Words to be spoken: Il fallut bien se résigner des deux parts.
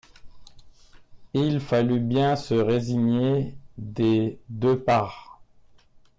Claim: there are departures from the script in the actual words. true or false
false